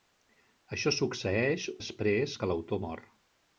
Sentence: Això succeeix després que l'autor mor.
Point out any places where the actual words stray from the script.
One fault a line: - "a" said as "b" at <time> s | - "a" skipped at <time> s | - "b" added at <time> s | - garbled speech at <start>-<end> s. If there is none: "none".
none